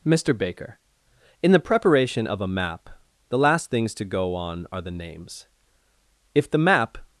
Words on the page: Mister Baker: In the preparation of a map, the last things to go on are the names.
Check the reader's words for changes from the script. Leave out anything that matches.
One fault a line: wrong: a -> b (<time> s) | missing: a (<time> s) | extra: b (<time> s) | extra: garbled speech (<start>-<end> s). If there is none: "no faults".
extra: If the map (6.3 s)